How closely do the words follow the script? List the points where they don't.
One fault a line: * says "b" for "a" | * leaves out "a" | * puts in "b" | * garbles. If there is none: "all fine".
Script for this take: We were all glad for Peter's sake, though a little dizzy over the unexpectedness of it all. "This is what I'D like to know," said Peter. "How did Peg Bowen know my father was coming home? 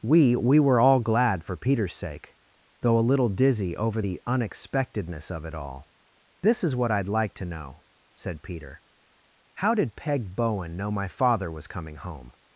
* puts in "we"